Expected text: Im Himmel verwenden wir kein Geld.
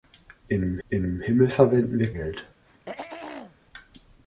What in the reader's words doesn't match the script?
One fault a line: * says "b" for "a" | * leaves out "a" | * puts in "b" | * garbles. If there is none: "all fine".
* puts in "im"
* leaves out "kein"